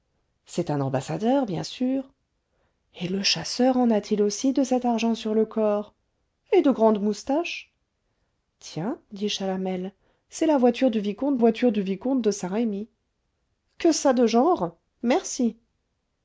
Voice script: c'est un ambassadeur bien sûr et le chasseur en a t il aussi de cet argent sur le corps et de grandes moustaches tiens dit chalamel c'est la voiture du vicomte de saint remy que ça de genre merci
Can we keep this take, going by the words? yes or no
no